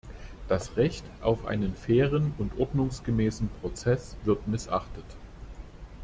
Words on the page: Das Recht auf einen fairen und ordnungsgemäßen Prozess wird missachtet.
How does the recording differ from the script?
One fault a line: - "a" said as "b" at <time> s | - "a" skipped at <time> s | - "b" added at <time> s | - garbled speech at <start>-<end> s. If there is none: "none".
none